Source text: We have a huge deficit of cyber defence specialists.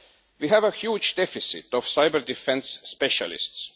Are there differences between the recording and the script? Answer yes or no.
no